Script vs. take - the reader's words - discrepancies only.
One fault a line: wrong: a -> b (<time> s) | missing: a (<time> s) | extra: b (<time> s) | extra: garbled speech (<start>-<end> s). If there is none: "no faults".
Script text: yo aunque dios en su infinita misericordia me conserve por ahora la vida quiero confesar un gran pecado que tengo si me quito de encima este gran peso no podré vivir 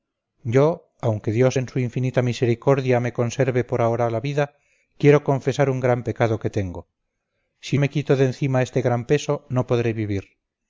no faults